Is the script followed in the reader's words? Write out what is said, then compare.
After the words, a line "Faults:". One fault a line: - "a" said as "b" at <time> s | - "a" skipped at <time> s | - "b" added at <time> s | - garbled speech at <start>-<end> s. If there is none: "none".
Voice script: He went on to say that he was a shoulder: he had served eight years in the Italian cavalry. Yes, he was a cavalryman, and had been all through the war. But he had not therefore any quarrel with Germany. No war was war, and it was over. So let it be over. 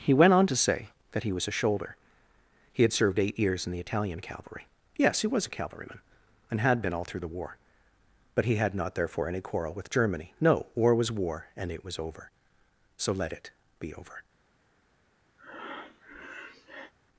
He went on to say that he was a shoulder: he had served eight years in the Italian cavalry. Yes, he was a cavalryman, and had been all through the war. But he had not therefore any quarrel with Germany. No war was war, and it was over. So let it be over.
Faults:
none